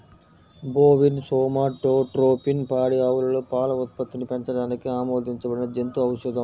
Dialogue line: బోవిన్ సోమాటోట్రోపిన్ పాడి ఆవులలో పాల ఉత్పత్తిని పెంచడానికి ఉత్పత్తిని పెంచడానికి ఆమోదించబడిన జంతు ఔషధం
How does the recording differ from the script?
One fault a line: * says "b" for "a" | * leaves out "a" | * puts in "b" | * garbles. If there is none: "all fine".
* leaves out "ఉత్పత్తిని పెంచడానికి"